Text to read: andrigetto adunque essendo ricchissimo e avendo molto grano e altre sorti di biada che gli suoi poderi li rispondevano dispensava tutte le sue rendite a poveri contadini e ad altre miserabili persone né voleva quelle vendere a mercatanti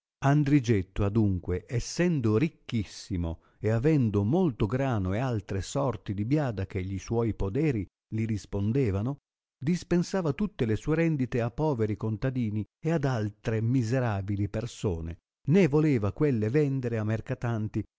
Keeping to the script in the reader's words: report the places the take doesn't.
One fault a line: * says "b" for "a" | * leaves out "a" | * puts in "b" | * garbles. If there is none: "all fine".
all fine